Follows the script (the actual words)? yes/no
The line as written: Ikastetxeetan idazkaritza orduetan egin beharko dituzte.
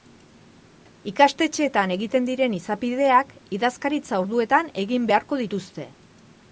no